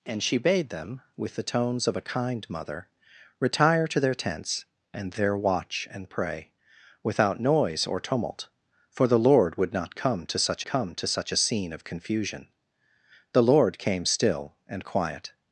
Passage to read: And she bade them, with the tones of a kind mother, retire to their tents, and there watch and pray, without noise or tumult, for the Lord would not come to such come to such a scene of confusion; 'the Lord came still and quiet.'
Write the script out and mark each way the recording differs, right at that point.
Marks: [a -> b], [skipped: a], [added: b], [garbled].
And she bade them, with the tones of a kind mother, retire to their tents, and there watch and pray, without noise or tumult, for the Lord would not come to such come to such a scene of confusion; 'the Lord came still and quiet.'